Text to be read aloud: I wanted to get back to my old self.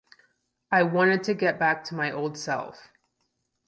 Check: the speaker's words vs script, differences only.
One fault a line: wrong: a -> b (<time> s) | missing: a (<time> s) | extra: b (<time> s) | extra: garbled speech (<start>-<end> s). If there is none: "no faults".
no faults